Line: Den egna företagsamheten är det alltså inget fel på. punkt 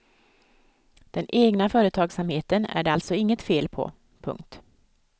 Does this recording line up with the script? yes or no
yes